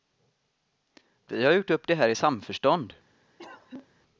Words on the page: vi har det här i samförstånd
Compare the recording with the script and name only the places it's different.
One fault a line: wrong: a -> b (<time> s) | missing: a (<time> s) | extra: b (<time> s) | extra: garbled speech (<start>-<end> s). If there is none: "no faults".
extra: gjort upp (1.5 s)